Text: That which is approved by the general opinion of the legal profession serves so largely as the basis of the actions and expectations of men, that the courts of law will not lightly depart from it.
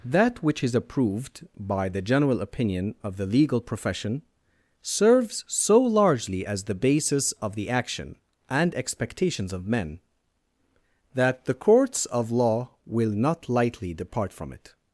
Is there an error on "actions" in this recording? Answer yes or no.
yes